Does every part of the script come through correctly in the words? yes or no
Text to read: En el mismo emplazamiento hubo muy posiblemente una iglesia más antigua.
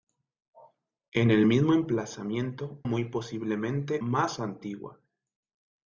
no